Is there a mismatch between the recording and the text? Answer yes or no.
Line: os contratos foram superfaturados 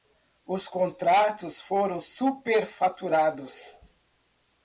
no